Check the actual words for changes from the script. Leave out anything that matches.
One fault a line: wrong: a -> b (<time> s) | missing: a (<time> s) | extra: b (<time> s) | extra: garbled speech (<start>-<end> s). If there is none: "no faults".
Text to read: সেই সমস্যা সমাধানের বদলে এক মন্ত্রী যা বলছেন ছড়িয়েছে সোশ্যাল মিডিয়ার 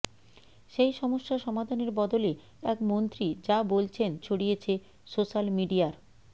no faults